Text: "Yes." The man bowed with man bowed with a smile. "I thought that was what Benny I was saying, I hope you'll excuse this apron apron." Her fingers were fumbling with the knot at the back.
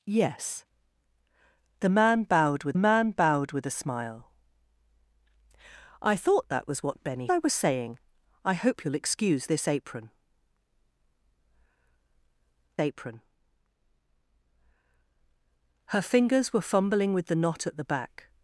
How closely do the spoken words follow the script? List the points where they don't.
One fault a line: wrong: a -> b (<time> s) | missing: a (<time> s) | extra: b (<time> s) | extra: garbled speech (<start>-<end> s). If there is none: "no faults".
no faults